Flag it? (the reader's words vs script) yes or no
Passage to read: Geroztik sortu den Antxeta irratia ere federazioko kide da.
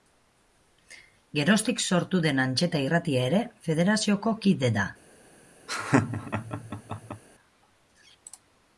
no